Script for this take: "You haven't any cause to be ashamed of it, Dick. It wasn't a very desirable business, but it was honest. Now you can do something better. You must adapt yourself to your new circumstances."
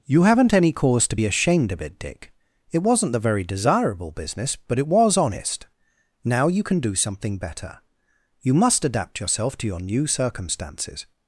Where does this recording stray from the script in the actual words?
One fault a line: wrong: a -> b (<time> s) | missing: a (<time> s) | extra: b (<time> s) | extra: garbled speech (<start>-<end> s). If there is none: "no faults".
wrong: a -> the (3.1 s)